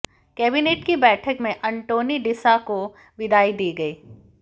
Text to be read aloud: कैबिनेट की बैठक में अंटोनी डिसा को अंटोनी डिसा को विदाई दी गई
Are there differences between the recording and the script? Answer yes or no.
yes